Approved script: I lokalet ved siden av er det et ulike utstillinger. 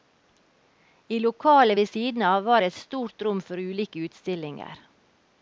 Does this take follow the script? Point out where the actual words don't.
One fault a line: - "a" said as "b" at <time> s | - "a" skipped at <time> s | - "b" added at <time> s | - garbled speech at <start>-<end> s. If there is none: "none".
- "er" said as "var" at 2.4 s
- "stort rom for" added at 2.8 s